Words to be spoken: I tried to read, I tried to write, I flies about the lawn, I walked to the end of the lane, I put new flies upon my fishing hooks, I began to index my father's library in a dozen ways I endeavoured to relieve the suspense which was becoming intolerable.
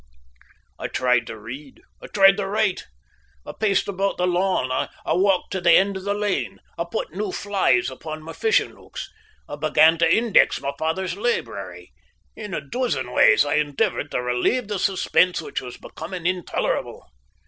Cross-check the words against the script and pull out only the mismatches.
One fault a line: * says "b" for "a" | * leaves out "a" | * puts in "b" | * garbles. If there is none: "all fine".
* says "paced" for "flies"